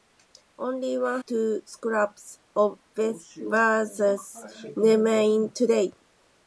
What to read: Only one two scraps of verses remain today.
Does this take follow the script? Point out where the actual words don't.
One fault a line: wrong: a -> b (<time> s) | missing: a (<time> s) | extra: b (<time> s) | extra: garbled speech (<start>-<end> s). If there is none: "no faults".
no faults